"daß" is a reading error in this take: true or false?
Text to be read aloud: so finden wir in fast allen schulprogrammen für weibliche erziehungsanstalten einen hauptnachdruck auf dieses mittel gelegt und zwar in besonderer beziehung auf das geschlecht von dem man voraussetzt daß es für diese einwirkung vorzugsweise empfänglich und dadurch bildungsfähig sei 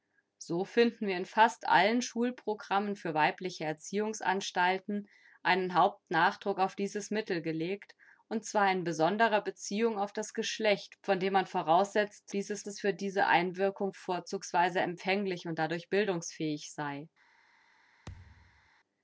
true